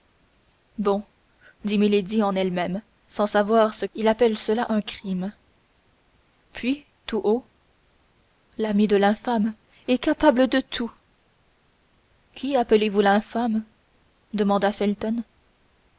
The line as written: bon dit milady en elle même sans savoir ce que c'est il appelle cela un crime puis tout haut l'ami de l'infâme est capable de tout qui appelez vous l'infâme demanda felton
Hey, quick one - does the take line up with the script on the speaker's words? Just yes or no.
no